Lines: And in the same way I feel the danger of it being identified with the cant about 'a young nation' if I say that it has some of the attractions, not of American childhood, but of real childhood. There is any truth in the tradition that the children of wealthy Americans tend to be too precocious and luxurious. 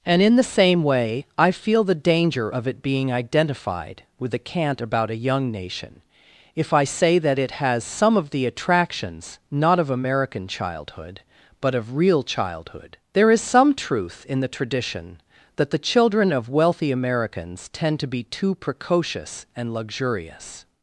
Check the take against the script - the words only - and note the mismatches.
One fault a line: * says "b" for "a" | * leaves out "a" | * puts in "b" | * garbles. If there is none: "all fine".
* says "some" for "any"